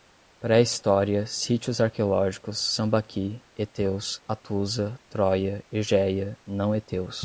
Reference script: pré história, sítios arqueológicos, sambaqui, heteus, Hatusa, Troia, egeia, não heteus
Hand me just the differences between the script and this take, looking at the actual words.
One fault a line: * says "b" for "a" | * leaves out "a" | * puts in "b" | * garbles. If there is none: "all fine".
all fine